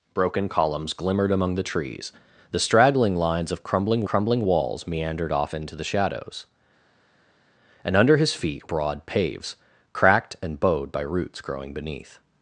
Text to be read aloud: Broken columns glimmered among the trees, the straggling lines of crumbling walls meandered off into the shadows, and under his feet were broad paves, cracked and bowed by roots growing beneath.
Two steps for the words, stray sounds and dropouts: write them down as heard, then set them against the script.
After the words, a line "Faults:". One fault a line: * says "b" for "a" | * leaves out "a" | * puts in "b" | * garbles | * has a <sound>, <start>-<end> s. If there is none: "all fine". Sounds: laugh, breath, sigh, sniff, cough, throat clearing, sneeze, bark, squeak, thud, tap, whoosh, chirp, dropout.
Broken columns glimmered among the trees, the straggling lines of crumbling crumbling walls meandered off into the shadows, and under his feet broad paves, cracked and bowed by roots growing beneath.
Faults:
* puts in "crumbling"
* leaves out "were"